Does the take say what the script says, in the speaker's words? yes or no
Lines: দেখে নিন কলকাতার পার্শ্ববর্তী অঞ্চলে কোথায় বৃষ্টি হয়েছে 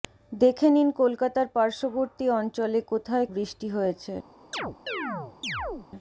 yes